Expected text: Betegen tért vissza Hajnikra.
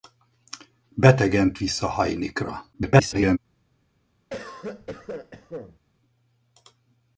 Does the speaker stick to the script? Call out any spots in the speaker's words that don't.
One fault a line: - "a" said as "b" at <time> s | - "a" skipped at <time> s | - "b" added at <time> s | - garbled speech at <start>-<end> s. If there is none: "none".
- "tért" skipped at 1.5 s
- garbled speech at 2.7-3.4 s